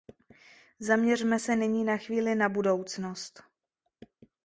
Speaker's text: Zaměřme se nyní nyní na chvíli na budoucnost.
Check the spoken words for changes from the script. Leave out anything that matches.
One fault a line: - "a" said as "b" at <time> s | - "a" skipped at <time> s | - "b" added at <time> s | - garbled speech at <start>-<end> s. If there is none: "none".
- "nyní" skipped at 1.8 s